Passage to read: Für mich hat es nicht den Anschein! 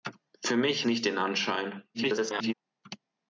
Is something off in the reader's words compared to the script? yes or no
yes